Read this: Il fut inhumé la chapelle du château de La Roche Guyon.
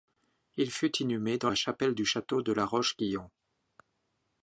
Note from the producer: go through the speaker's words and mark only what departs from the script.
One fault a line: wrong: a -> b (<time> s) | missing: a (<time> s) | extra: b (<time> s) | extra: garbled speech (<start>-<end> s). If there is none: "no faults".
extra: dans (1.4 s)